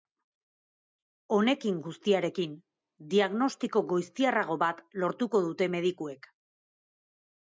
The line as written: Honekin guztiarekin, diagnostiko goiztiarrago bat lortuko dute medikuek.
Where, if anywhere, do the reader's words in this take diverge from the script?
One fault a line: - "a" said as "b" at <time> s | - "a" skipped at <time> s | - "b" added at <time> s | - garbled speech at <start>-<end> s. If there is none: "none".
none